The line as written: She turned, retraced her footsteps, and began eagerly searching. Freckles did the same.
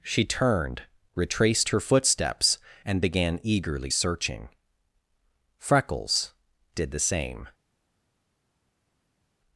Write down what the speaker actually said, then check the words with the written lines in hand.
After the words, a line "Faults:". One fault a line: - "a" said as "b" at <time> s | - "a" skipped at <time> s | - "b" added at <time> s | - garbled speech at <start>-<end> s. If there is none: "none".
She turned, retraced her footsteps, and began eagerly searching. Freckles did the same.
Faults:
none